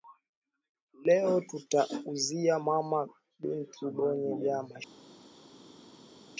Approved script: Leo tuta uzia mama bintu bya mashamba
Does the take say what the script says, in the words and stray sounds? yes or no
no